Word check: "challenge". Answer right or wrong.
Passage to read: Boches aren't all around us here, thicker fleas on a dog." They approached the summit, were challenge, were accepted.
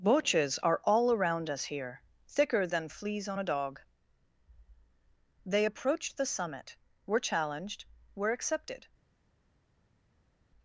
wrong